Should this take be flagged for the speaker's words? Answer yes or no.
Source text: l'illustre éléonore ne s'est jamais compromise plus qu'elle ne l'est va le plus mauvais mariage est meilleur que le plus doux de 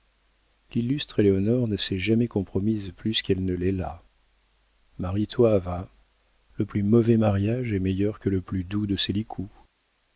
yes